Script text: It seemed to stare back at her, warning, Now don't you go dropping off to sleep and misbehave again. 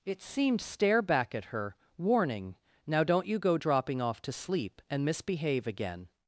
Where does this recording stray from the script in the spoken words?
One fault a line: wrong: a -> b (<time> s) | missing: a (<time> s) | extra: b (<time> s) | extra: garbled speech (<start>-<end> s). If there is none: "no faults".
missing: to (0.6 s)